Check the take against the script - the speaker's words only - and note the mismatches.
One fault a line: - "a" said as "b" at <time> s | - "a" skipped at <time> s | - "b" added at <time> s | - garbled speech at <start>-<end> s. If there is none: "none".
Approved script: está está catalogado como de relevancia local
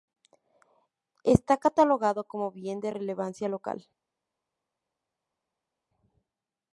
- "está" skipped at 1.6 s
- "bien" added at 2.5 s